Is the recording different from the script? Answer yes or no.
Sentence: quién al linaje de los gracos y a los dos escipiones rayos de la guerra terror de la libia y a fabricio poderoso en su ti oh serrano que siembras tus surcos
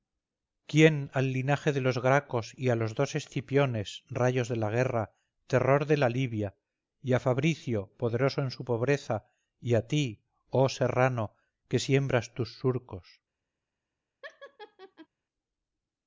yes